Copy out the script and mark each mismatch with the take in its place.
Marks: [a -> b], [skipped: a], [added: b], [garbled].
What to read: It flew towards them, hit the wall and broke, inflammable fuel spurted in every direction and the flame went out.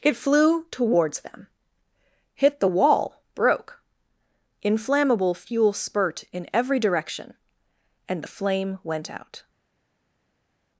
It flew towards them, hit the wall [skipped: and] broke, inflammable fuel [spurted -> spurt] in every direction and the flame went out.